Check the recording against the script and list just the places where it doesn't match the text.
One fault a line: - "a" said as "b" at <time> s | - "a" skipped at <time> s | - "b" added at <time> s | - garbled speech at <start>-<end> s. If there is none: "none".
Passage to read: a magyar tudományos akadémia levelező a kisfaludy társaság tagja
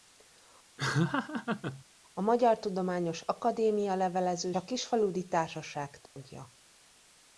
none